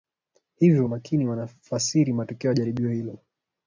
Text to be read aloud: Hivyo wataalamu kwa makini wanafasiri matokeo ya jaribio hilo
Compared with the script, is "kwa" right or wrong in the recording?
wrong